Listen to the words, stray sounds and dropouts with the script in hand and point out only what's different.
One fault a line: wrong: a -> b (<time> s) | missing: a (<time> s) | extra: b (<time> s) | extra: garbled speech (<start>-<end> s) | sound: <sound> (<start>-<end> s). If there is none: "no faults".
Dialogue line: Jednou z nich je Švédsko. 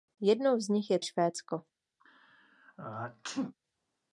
sound: sneeze (2.0-3.5 s)